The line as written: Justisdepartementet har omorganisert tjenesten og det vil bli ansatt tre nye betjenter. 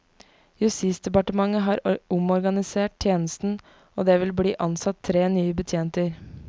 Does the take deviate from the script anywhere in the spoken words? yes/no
no